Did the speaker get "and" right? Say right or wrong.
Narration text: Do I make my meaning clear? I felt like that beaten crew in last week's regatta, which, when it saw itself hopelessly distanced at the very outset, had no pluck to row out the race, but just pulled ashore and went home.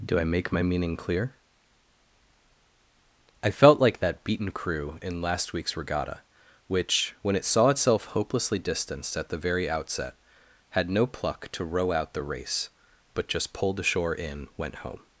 wrong